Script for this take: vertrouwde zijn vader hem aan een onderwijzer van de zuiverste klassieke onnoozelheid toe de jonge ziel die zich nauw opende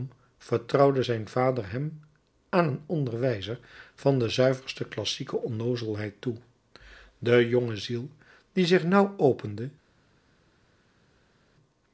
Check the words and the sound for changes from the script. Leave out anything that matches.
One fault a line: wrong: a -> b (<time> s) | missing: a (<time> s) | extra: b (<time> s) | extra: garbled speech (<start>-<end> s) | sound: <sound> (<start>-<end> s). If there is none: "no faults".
no faults